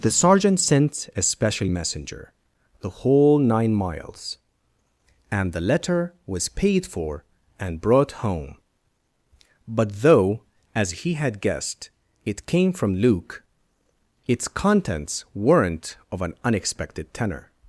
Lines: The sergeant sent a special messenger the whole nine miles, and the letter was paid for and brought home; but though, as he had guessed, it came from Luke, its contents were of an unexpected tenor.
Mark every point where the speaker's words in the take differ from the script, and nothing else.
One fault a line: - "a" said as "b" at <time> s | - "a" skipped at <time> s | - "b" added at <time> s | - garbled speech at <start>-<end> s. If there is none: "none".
- "were" said as "weren't" at 15.3 s